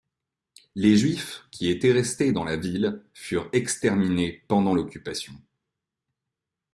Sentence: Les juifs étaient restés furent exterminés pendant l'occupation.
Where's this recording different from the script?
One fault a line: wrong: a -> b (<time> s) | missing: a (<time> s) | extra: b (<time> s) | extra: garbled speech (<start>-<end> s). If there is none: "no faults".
extra: qui (1.5 s)
extra: dans la ville (2.3 s)